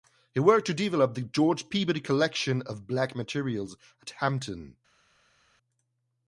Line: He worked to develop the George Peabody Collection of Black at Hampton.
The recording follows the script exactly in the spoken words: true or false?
false